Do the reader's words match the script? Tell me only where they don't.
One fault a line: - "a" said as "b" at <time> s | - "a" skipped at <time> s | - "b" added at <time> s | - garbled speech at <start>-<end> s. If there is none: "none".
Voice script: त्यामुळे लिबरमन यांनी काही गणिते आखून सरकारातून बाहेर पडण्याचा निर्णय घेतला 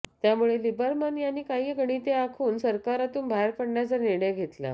none